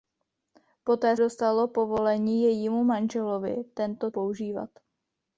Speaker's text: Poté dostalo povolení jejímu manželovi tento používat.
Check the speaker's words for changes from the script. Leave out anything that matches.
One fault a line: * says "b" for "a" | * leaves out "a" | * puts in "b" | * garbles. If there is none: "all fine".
all fine